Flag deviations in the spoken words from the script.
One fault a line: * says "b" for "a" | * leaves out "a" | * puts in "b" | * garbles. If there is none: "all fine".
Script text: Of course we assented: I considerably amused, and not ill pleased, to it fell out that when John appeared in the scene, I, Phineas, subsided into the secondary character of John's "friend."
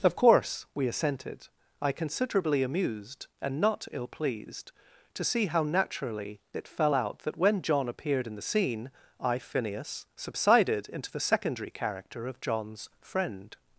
* puts in "see how naturally"